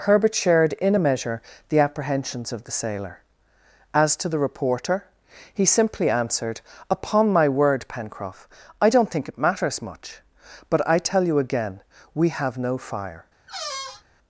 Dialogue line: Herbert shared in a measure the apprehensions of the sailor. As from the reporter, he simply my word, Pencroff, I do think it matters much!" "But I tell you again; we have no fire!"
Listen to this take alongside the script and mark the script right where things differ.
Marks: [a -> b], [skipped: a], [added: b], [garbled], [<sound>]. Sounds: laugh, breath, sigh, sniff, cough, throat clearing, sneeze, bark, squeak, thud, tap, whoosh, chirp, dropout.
Herbert shared in a measure the apprehensions of the sailor. As [from -> to] the reporter, he simply [added: answered Upon] my word, Pencroff, I [do -> don't] think it matters much!" "But I tell you again; we have no fire!" [squeak]